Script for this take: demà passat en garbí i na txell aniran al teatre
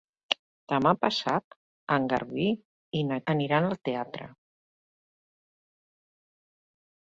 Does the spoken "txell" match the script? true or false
false